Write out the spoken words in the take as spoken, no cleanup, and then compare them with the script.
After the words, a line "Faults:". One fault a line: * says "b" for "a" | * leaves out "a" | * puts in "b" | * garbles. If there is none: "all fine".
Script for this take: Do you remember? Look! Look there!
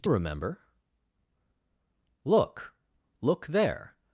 Do remember? Look! Look there!
Faults:
* leaves out "you"